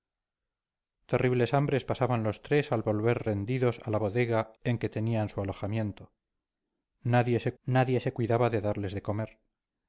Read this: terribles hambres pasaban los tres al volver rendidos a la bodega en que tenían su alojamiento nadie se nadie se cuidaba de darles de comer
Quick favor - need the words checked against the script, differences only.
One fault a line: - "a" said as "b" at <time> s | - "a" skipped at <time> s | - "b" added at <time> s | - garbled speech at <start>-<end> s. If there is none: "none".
none